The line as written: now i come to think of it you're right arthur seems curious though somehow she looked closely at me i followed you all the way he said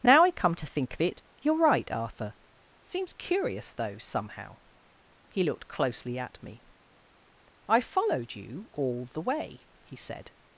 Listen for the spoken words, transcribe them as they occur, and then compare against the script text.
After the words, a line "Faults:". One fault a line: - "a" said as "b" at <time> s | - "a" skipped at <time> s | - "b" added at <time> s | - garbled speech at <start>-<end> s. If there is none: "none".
now i come to think of it you're right arthur seems curious though somehow he looked closely at me i followed you all the way he said
Faults:
- "she" said as "he" at 5.3 s